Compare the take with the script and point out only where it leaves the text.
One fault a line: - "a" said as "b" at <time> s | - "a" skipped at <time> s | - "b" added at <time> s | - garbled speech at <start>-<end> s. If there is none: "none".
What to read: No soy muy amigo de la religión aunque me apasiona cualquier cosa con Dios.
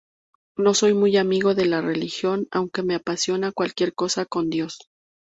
none